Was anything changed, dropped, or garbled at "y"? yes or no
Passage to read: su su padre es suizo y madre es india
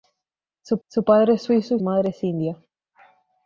no